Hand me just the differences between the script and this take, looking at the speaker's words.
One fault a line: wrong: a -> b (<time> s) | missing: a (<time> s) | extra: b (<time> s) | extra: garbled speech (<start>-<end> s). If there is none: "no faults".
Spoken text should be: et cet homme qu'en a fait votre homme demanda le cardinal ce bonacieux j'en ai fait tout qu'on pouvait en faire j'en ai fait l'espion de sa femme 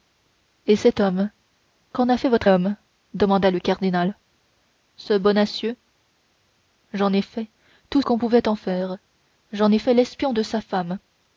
no faults